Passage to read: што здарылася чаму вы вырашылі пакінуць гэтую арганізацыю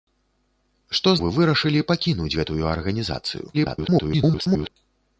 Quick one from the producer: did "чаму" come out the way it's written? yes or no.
no